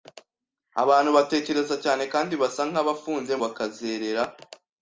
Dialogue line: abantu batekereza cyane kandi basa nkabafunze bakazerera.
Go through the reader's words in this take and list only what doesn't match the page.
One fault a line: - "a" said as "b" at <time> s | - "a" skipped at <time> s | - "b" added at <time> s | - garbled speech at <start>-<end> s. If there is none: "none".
none